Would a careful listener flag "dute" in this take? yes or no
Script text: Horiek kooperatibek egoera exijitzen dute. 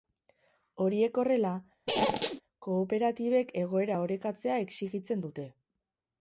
no